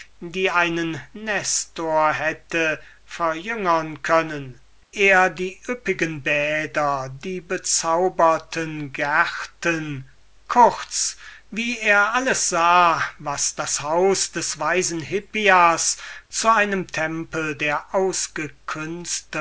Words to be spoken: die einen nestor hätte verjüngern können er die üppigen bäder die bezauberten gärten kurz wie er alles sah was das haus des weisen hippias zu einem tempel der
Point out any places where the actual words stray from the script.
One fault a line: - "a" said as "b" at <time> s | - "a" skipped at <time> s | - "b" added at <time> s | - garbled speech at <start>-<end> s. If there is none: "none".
none